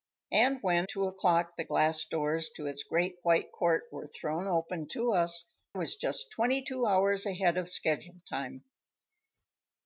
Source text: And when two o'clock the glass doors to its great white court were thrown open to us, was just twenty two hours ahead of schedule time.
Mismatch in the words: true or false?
false